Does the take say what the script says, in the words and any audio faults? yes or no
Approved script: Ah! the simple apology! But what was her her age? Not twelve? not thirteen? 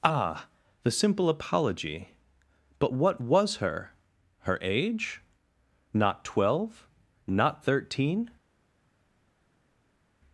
yes